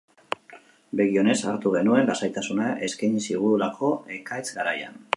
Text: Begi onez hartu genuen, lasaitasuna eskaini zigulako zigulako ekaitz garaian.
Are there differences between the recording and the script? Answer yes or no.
yes